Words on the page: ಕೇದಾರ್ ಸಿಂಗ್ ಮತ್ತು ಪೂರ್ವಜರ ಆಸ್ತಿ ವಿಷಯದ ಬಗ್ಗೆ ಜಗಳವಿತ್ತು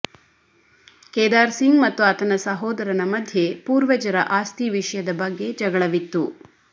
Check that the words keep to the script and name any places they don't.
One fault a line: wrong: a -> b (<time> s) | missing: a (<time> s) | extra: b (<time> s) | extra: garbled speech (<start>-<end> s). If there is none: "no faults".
extra: ಆತನ ಸಹೋದರನ ಮಧ್ಯೆ (2.0 s)